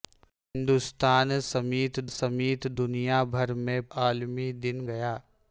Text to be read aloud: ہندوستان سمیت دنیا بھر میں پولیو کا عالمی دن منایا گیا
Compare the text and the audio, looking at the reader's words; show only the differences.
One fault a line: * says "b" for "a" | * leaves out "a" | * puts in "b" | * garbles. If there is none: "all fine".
* puts in "سمیت"
* leaves out "پولیو کا"
* leaves out "منایا"